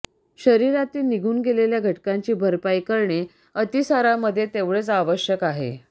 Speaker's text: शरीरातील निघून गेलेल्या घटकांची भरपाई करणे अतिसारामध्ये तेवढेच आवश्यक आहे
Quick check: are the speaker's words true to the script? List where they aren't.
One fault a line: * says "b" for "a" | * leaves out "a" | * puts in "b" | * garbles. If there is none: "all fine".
all fine